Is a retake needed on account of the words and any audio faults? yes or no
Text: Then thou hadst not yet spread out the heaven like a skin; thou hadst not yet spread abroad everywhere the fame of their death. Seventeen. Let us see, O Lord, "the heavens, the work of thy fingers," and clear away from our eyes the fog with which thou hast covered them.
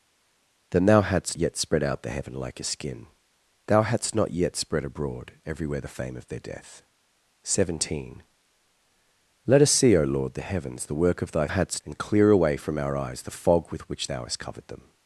yes